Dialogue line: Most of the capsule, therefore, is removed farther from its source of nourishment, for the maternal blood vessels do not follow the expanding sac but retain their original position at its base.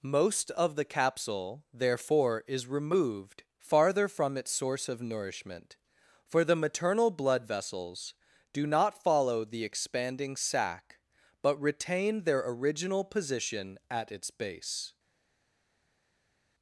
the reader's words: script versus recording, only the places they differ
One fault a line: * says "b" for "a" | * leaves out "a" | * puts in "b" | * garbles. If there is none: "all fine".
all fine